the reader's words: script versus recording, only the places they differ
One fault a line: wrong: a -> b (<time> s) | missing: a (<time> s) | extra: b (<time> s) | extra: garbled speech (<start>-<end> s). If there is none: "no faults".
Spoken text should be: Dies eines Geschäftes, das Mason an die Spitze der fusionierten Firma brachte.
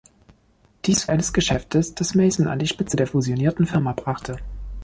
no faults